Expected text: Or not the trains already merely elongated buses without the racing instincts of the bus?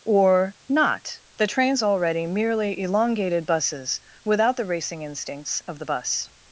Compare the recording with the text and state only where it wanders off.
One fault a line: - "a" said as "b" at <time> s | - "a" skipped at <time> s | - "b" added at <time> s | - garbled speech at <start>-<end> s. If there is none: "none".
none